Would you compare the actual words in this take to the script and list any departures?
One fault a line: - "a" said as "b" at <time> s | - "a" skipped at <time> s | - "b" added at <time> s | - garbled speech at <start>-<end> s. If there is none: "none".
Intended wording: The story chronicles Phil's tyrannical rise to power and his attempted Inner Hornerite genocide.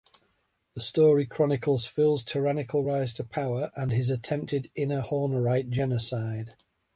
none